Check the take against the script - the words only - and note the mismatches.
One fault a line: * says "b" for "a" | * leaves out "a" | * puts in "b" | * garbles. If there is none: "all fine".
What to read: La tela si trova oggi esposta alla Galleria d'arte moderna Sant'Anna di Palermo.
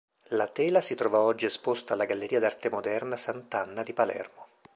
all fine